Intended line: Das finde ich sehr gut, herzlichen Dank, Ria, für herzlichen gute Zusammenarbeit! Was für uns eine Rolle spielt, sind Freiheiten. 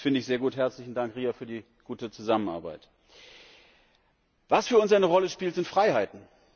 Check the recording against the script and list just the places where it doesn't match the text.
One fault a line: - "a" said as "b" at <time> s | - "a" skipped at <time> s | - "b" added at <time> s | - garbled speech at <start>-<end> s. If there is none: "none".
- "herzlichen" said as "die" at 1.4 s